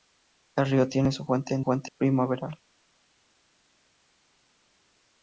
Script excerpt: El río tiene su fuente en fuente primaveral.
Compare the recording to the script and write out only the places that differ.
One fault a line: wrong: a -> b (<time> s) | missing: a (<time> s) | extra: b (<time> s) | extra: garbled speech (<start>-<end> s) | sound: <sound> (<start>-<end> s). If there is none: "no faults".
no faults